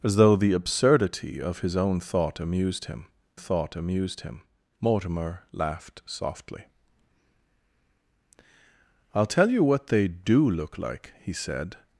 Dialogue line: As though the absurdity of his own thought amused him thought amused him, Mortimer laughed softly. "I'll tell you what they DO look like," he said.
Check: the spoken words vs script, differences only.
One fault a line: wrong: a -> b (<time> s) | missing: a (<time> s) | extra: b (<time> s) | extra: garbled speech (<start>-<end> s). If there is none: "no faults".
no faults